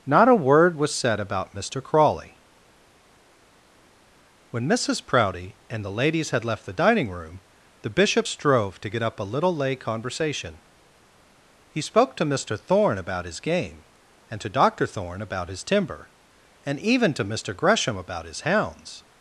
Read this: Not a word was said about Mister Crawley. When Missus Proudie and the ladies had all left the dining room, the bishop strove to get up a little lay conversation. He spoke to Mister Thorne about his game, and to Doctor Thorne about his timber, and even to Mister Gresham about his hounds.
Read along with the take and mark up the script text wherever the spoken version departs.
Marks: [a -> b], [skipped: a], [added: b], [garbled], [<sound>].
Not a word was said about Mister Crawley. When Missus Proudie and the ladies had [skipped: all] left the dining room, the bishop strove to get up a little lay conversation. He spoke to Mister Thorne about his game, and to Doctor Thorne about his timber, and even to Mister Gresham about his hounds.